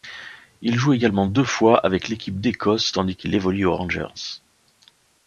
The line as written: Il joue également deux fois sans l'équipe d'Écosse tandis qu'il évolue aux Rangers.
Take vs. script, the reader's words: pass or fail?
fail